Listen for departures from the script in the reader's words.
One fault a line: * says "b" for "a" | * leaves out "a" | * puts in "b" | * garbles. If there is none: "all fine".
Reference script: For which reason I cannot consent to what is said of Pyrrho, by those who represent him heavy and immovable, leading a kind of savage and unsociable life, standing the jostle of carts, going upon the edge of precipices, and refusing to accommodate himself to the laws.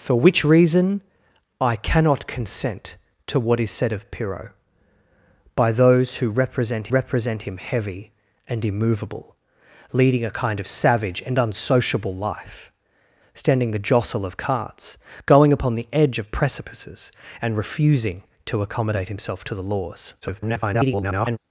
* puts in "represent"
* garbles